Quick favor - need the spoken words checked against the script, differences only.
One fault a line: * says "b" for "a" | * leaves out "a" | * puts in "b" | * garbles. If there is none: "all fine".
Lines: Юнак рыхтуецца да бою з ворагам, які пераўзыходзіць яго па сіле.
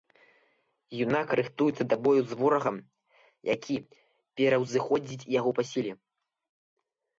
all fine